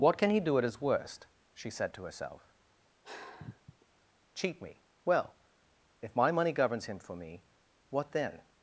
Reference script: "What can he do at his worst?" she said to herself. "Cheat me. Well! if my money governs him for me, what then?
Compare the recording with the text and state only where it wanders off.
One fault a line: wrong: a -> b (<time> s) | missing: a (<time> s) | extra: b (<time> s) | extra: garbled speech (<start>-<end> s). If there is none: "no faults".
no faults